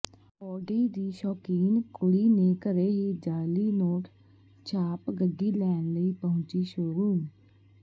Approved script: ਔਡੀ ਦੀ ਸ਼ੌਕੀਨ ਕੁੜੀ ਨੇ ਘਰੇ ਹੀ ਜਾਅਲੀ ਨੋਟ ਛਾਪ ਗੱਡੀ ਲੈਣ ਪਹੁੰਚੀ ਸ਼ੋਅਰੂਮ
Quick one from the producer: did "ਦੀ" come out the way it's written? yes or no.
yes